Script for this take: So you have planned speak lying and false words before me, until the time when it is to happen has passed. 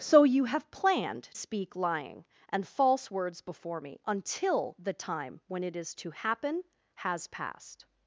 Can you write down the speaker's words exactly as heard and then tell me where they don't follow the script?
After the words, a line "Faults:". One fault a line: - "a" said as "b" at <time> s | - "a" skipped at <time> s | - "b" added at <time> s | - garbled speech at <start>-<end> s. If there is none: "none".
So you have planned speak lying and false words before me, until the time when it is to happen has passed.
Faults:
none